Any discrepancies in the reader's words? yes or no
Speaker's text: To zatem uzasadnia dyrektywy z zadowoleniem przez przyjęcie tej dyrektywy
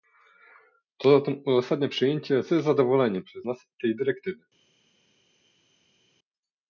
yes